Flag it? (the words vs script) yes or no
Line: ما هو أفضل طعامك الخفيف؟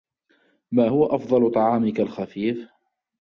no